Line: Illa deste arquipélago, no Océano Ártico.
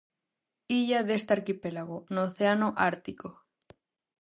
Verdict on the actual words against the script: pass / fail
pass